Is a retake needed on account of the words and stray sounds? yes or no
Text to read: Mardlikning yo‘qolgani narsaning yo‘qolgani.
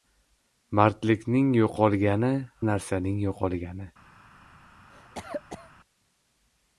yes